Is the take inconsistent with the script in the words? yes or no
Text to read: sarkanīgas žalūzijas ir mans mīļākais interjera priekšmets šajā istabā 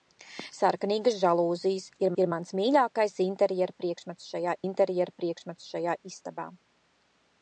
yes